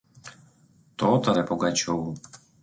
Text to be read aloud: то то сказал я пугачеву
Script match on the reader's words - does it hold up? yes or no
no